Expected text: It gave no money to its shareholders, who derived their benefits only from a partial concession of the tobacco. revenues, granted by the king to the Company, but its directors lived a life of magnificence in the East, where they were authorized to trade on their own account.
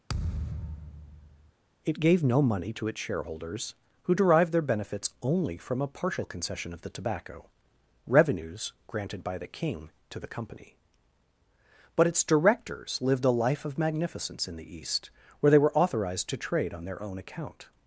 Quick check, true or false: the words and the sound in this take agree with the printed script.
false